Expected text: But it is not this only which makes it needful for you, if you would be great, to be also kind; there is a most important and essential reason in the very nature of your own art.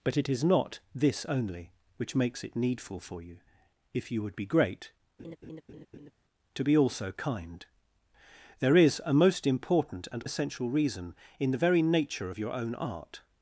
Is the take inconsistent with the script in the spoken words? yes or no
no